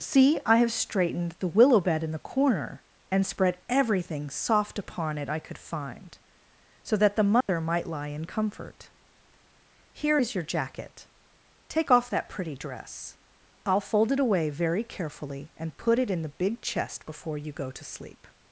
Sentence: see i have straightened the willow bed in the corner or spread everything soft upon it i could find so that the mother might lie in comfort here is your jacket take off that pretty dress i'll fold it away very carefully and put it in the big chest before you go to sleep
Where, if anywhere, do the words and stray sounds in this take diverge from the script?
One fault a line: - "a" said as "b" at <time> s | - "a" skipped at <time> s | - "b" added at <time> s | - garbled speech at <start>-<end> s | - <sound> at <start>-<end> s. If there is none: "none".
- "or" said as "and" at 3.1 s
- dropout at 7.4-7.5 s